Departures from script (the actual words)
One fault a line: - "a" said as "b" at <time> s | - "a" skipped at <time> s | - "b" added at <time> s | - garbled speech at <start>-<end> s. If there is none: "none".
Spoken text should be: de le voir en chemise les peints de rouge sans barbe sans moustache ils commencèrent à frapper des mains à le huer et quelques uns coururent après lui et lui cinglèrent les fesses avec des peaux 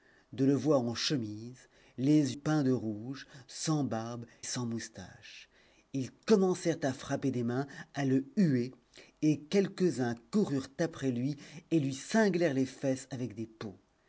none